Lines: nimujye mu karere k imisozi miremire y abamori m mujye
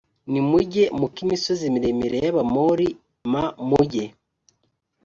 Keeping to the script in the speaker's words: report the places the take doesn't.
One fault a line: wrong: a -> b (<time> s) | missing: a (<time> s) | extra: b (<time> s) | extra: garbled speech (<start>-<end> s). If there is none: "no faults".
missing: karere (1.1 s)